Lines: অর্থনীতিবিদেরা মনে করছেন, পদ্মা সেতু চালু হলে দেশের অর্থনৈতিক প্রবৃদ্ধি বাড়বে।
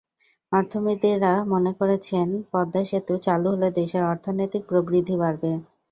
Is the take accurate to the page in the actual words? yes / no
yes